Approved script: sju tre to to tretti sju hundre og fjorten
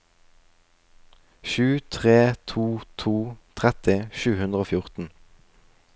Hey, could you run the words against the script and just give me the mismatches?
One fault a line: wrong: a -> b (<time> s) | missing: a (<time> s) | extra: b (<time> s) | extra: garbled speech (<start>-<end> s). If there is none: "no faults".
no faults